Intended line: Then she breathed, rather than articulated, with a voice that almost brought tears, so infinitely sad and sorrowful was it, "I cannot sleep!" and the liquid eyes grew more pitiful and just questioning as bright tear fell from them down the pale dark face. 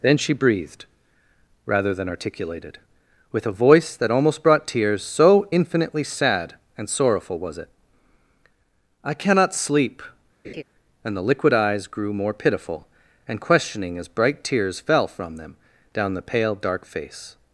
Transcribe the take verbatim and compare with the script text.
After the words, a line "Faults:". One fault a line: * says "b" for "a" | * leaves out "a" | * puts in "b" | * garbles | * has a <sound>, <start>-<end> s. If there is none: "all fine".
Then she breathed, rather than articulated, with a voice that almost brought tears, so infinitely sad and sorrowful was it, "I cannot sleep!" and the liquid eyes grew more pitiful and questioning as bright tears fell from them down the pale dark face.
Faults:
* has a laugh, 10.4-10.6 s
* leaves out "just"
* says "tears" for "tear"